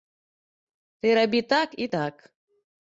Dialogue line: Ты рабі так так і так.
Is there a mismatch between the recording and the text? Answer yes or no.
yes